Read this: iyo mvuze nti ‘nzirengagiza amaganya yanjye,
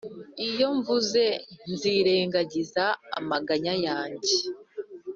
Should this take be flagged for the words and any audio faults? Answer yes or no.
yes